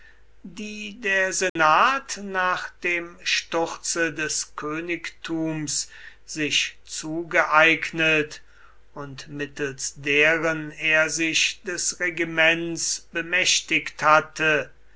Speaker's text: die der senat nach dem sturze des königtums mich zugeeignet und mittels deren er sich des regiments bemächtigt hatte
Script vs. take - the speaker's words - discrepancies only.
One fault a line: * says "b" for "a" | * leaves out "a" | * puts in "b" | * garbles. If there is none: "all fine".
* says "sich" for "mich"